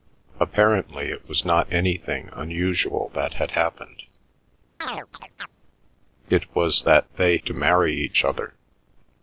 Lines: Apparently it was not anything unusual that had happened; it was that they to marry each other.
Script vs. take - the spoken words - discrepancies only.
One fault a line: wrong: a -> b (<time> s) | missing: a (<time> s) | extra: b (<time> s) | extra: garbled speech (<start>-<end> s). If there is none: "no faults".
no faults